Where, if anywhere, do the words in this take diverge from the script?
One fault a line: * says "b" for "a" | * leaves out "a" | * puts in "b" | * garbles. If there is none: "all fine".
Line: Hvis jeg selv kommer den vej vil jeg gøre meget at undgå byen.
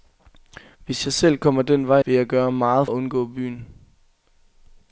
all fine